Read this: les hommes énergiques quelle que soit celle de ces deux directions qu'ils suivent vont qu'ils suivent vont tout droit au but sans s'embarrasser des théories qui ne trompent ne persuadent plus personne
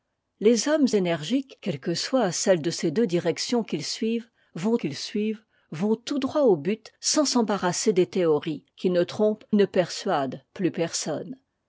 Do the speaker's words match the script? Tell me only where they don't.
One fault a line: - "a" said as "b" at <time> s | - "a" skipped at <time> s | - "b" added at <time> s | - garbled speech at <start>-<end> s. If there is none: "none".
none